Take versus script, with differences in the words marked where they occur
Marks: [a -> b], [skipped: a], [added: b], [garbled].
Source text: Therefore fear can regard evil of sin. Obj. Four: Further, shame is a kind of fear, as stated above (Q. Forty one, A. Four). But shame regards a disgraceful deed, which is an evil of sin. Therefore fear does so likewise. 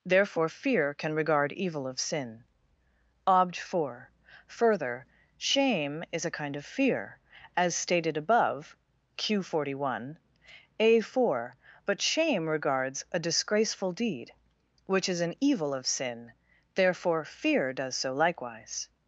Therefore fear can regard evil of sin. Obj. Four: Further, shame is a kind of fear, as stated above (Q. Forty one, A. Four). But shame regards a disgraceful deed, which is an evil of sin. Therefore fear does so likewise.